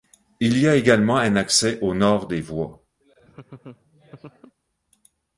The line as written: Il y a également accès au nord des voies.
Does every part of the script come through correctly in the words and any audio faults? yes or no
no